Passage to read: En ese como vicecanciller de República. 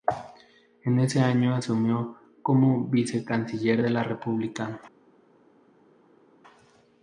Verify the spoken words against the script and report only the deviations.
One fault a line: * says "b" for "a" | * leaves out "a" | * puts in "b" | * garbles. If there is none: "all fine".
* puts in "año asumió"
* puts in "la"